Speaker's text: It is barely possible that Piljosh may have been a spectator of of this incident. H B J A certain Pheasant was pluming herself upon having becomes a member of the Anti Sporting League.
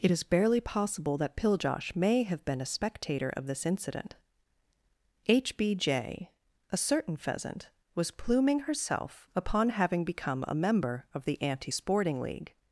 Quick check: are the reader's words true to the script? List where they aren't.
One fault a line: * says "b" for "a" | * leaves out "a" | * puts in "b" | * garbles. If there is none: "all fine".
* leaves out "of"
* says "become" for "becomes"